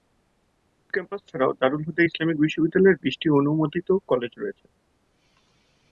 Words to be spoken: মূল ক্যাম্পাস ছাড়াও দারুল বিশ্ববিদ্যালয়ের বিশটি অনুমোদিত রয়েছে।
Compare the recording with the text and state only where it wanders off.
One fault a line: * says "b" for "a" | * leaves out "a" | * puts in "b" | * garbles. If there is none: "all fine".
* puts in "হুদা ইসলামিক"
* puts in "কলেজ"